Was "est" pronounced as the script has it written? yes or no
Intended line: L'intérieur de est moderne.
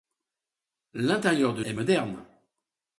yes